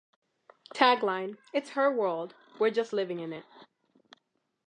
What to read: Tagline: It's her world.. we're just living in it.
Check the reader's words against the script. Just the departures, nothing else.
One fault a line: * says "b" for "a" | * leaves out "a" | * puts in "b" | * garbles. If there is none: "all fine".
all fine